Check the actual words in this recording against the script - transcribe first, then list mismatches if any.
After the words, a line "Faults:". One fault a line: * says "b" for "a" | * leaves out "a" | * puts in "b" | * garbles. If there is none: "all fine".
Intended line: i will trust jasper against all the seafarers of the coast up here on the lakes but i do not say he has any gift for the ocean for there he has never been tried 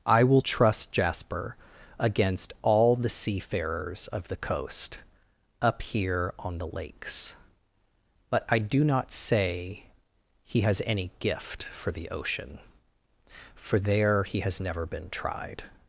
i will trust jasper against all the seafarers of the coast up here on the lakes but i do not say he has any gift for the ocean for there he has never been tried
Faults:
all fine